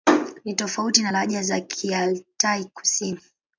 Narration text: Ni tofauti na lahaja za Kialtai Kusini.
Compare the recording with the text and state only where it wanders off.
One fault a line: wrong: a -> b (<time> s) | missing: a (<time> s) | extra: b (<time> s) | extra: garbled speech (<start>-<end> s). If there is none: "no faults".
no faults